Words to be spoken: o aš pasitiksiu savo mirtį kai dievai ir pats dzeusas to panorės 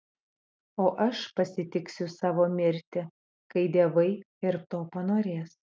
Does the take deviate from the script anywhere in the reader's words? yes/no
yes